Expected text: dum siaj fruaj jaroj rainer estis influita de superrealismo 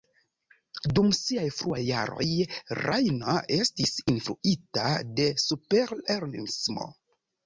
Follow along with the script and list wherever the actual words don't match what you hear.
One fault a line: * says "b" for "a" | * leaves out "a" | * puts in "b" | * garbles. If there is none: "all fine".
all fine